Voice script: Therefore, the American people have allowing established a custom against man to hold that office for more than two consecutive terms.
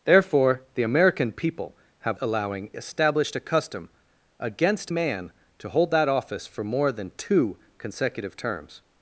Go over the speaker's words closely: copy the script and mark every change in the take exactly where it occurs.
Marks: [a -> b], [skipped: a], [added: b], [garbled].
Therefore, the American people have allowing established a custom against man to hold that office for more than two consecutive terms.